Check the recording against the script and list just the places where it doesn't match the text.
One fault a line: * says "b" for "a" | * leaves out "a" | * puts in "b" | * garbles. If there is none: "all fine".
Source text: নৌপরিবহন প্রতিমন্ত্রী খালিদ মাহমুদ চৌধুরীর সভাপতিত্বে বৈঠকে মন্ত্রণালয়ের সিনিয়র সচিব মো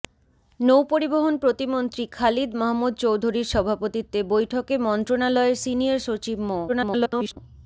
* garbles